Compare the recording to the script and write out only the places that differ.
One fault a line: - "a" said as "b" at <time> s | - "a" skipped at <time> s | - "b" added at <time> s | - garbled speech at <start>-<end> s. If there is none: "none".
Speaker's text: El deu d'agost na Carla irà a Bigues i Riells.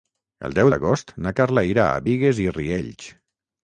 none